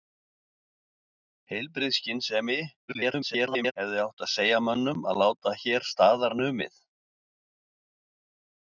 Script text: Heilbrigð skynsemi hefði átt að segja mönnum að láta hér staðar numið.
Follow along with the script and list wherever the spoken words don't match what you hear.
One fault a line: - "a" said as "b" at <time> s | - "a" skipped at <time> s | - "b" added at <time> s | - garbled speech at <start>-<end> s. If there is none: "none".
- garbled speech at 2.9-3.7 s